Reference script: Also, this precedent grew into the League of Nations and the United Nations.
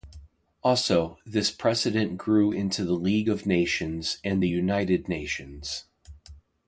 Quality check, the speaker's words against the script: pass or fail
pass